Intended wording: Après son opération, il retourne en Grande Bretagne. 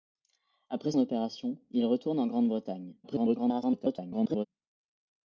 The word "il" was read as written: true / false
true